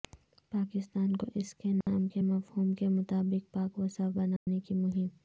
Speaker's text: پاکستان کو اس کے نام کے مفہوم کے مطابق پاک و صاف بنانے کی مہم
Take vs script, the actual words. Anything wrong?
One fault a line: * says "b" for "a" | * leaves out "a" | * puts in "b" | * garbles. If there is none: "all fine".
all fine